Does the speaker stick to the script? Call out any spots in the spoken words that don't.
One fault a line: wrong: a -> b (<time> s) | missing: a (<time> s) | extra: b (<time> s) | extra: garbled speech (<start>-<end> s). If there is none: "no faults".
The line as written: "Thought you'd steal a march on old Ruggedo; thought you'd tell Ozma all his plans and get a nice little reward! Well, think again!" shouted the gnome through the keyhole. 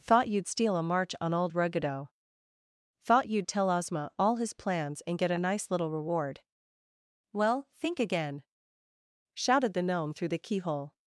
no faults